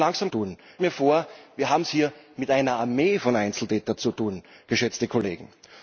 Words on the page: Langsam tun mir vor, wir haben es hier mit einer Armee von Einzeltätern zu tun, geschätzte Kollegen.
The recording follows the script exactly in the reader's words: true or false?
true